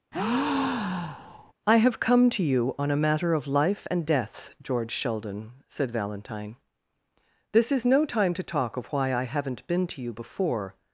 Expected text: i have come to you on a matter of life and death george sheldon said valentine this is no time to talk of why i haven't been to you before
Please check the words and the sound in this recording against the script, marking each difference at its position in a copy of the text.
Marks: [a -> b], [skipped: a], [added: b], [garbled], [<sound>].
[breath] i have come to you on a matter of life and death george sheldon said valentine this is no time to talk of why i haven't been to you before